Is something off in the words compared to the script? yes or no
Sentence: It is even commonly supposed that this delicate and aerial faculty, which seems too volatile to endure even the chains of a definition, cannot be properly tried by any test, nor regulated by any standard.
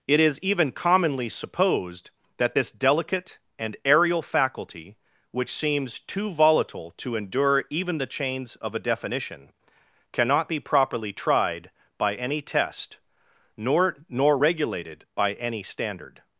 yes